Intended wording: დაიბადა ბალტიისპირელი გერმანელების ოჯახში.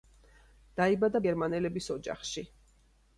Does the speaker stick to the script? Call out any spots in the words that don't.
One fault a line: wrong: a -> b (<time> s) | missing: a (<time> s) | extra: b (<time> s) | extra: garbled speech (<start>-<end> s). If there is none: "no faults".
missing: ბალტიისპირელი (1.2 s)